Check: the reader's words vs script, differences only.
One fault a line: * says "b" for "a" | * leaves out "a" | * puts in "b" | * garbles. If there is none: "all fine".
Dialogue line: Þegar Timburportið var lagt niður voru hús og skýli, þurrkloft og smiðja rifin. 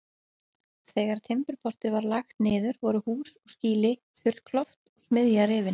all fine